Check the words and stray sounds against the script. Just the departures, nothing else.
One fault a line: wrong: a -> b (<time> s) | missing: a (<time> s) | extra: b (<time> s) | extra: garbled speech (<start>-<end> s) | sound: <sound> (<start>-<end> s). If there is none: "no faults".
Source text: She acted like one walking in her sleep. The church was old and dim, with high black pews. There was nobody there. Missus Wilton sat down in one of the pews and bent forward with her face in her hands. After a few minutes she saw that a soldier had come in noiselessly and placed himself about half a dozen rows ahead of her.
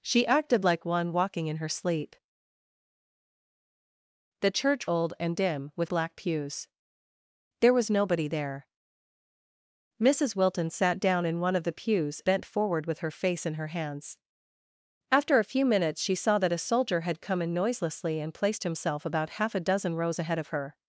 missing: was (4.9 s)
missing: high (5.9 s)
missing: and (12.2 s)